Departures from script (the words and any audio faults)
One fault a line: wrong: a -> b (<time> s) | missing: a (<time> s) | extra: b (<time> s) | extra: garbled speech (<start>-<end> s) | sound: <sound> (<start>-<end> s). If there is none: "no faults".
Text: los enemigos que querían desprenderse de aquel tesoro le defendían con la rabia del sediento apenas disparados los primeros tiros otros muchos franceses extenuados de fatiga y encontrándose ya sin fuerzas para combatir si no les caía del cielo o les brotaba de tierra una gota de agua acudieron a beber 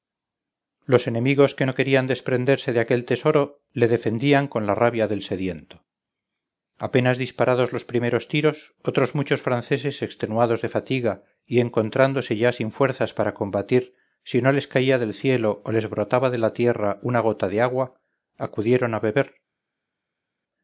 extra: no (1.6 s)
extra: la (16.4 s)